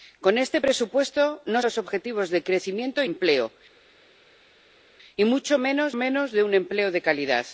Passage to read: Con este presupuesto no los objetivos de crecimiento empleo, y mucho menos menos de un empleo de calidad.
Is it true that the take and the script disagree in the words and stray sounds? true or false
false